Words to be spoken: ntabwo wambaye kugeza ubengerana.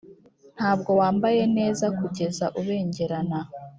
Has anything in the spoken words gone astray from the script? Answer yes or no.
yes